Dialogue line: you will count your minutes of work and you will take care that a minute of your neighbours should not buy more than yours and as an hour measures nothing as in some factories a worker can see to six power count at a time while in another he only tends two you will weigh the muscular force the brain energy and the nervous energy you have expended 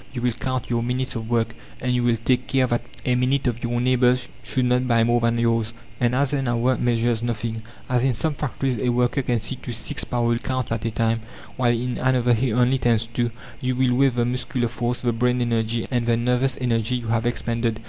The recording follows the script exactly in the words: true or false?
true